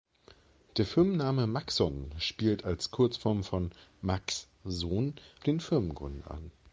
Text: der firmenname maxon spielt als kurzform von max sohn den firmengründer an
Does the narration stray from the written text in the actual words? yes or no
no